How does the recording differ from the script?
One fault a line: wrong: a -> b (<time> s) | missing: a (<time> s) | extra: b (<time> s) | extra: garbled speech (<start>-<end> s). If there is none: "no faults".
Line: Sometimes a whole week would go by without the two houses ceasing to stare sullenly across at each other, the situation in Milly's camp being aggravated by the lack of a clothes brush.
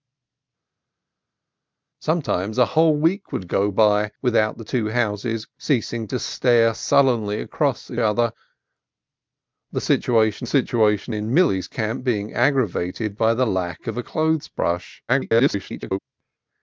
missing: each (8.0 s)
extra: situation (10.4 s)
extra: garbled speech (15.1-16.0 s)